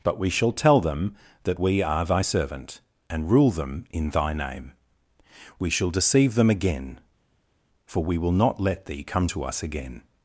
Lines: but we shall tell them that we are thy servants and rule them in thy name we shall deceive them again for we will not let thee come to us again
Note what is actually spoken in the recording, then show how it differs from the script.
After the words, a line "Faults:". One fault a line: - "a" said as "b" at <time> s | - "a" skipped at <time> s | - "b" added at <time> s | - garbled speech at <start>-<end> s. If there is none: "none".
but we shall tell them that we are thy servant and rule them in thy name we shall deceive them again for we will not let thee come to us again
Faults:
- "servants" said as "servant" at 2.2 s